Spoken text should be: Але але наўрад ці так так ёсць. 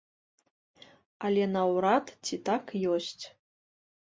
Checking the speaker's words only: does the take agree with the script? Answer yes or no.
no